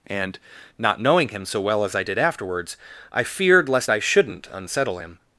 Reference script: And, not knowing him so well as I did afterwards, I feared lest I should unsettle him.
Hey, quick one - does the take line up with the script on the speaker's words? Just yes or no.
no